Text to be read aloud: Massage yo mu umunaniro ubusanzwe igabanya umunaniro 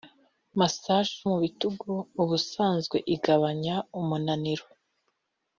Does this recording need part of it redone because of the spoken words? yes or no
yes